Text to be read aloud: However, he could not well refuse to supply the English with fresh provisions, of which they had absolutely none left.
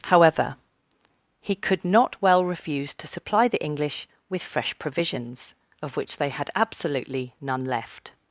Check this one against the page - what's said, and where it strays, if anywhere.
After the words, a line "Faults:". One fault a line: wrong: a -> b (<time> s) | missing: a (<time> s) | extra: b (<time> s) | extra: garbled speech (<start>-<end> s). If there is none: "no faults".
However, he could not well refuse to supply the English with fresh provisions, of which they had absolutely none left.
Faults:
no faults